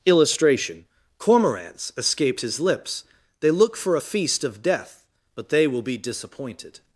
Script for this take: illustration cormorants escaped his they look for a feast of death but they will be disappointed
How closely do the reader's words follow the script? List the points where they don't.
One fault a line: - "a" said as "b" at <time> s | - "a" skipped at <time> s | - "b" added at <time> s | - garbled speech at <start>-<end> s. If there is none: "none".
- "lips" added at 2.6 s